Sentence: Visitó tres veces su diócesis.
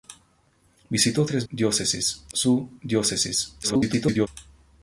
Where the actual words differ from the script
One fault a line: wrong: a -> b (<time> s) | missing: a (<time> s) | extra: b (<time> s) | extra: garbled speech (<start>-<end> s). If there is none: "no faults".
wrong: veces -> diócesis (1.5 s)
extra: garbled speech (3.6-4.3 s)